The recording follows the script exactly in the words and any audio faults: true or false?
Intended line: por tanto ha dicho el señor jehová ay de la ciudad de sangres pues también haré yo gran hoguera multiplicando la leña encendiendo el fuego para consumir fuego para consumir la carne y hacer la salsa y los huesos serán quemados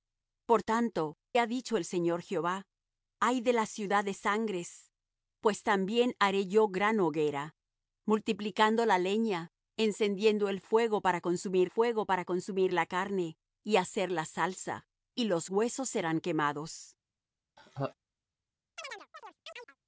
false